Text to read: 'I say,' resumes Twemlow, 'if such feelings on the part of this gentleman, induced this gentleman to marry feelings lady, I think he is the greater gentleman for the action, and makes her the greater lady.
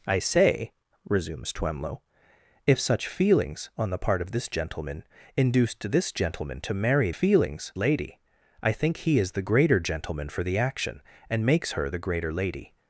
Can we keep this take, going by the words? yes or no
yes